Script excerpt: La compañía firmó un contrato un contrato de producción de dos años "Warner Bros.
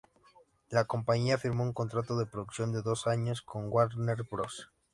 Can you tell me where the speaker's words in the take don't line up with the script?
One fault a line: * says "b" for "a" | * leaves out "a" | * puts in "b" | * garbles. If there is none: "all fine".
* leaves out "un contrato"
* puts in "con"